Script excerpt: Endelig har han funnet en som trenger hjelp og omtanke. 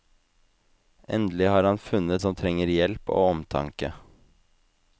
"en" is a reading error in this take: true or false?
true